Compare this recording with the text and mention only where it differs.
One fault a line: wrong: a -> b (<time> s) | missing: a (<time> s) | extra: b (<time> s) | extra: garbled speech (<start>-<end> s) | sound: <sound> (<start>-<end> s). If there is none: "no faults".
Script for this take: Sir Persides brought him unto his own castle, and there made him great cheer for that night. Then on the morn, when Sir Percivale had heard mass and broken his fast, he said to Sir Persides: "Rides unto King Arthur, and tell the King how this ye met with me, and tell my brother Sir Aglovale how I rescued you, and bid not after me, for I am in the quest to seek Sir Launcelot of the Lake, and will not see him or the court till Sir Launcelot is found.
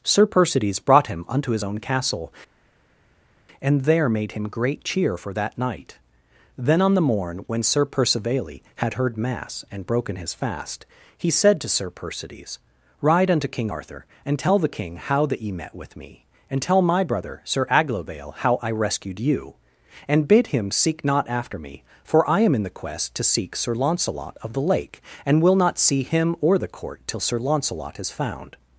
wrong: Rides -> Ride (13.0 s)
wrong: this -> that (15.3 s)
extra: him seek (20.5 s)